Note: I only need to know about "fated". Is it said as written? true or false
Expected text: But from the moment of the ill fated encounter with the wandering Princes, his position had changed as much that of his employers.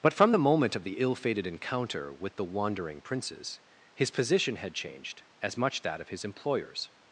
true